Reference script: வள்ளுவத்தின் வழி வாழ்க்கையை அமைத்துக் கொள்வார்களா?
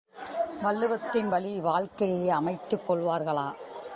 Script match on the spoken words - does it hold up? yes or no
yes